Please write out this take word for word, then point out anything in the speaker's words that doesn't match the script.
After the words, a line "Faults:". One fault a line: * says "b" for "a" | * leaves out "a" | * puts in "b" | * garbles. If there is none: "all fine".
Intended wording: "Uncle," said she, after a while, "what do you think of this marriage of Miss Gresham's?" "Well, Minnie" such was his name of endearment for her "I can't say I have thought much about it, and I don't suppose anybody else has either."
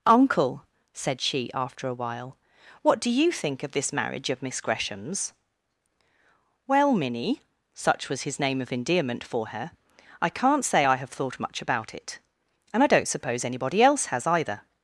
"Uncle," said she, after a while, "what do you think of this marriage of Miss Gresham's?" "Well, Minnie" such was his name of endearment for her "I can't say I have thought much about it, and I don't suppose anybody else has either."
Faults:
all fine